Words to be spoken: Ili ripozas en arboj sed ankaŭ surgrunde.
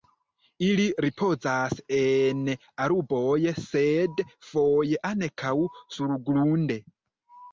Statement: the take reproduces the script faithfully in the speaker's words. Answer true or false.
false